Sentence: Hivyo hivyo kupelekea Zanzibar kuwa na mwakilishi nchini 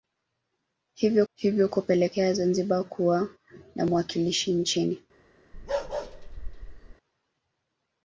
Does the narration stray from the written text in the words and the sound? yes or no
yes